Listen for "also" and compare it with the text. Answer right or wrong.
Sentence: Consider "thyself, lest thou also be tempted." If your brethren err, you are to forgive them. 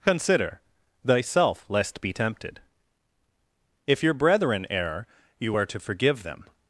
wrong